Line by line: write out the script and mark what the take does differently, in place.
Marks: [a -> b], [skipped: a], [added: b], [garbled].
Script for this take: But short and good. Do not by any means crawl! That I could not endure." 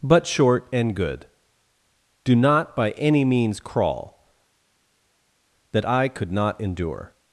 But short and good. Do not by any means crawl! That I could not endure."